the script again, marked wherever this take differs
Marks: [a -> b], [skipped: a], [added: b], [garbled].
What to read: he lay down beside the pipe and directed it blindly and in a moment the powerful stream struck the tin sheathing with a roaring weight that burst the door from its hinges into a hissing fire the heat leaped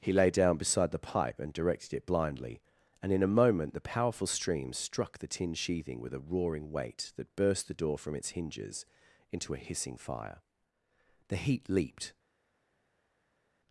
he lay down beside the pipe and directed it blindly and in a moment the powerful stream struck the tin sheathing with a roaring weight that burst the door from its hinges into a hissing fire the heat leaped